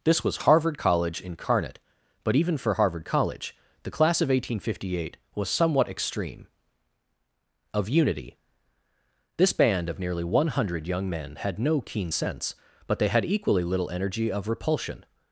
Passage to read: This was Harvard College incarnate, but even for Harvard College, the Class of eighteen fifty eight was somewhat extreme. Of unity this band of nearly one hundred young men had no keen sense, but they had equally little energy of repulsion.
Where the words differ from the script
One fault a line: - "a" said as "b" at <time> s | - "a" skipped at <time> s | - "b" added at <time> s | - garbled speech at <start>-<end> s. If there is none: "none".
none